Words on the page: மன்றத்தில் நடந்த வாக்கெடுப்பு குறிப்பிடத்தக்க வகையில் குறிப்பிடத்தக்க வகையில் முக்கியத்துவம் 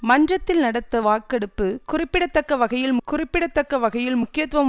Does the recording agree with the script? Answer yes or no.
yes